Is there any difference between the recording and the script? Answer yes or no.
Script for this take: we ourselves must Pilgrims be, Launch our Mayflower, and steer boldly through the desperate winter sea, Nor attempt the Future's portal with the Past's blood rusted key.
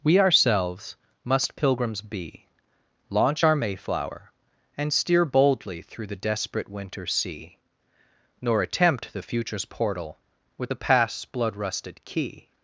no